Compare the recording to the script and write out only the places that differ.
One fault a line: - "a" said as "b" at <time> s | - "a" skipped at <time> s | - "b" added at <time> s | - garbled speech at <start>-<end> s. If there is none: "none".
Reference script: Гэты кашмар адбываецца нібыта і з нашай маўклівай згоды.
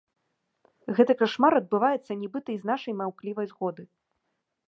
none